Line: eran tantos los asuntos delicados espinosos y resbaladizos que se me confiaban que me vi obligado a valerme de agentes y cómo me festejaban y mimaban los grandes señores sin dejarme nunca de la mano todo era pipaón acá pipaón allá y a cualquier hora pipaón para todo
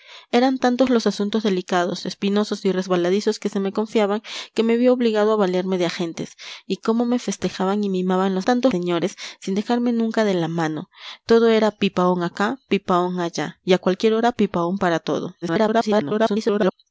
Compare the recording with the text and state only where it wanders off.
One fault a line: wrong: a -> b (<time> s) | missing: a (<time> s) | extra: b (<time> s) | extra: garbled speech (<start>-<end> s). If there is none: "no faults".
wrong: grandes -> tantos (8.4 s)
extra: garbled speech (15.4-16.7 s)